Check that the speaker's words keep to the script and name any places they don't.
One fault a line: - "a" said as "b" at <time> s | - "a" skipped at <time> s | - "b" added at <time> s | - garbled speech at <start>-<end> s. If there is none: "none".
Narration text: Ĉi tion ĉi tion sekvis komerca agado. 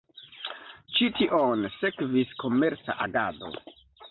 - "ĉi tion" skipped at 1.7 s